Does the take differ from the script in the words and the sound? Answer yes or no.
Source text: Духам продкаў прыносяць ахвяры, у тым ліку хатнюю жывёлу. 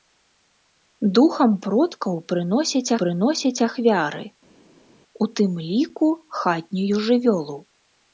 yes